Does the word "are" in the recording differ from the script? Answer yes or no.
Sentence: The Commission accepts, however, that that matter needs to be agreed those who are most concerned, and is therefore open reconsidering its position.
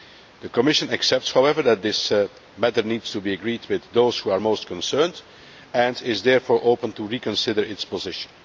no